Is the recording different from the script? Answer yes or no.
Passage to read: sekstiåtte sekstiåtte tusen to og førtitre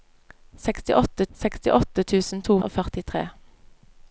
no